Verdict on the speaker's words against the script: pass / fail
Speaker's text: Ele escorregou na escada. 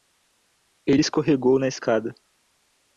pass